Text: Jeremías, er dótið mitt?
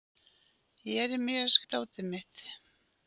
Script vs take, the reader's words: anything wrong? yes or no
no